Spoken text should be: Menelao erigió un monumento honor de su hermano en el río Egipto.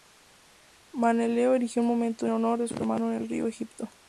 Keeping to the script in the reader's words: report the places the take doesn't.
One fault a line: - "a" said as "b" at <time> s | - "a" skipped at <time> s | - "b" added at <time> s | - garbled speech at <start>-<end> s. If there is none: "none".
none